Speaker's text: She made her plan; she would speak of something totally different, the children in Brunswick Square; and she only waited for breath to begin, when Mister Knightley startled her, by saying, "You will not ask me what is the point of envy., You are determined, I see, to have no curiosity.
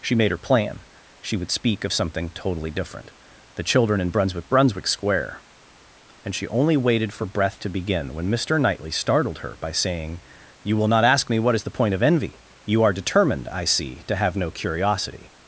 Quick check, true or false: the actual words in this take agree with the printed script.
false